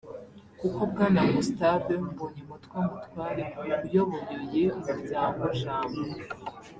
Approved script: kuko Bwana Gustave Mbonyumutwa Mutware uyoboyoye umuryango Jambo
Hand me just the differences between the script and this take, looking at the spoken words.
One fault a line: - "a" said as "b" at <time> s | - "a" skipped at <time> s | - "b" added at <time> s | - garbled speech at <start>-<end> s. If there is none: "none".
none